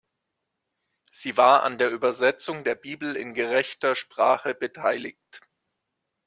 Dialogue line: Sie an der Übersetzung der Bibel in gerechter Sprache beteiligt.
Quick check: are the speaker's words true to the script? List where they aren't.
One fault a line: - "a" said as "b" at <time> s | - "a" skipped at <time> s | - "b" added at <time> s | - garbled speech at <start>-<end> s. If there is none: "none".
- "war" added at 1.4 s